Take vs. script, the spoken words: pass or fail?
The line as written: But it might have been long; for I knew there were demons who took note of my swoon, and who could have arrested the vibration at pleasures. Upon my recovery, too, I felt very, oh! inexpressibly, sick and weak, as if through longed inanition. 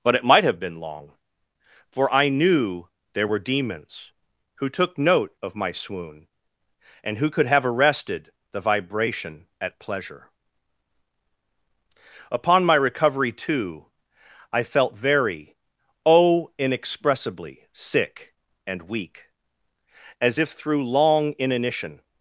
fail